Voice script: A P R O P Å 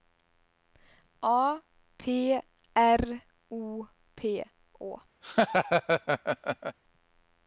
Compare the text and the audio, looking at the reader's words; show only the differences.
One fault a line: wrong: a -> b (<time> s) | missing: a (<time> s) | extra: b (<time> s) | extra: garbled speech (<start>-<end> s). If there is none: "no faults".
no faults